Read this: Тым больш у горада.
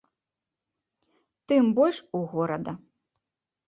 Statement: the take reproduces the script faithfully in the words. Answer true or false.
true